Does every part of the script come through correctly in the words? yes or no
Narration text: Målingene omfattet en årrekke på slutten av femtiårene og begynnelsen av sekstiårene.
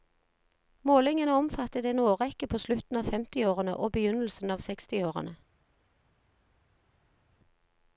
yes